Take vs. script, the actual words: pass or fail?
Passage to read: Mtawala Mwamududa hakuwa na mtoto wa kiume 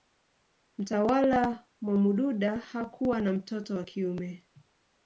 pass